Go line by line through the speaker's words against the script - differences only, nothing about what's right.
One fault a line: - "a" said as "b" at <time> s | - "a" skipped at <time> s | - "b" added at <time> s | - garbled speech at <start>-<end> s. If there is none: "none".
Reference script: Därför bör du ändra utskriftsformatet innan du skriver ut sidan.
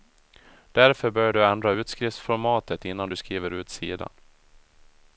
none